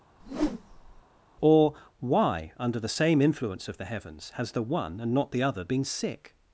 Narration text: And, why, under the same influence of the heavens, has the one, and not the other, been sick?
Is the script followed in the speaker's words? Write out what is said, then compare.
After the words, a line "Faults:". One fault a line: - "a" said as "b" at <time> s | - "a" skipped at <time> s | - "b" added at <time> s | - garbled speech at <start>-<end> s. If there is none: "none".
Or, why, under the same influence of the heavens, has the one, and not the other, been sick?
Faults:
- "And" said as "Or" at 1.4 s